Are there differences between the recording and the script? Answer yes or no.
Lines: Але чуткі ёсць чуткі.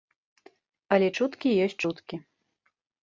no